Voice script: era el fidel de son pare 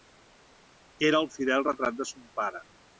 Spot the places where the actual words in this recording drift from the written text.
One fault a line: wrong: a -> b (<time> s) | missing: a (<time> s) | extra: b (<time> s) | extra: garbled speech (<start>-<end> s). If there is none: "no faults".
extra: retrat (1.7 s)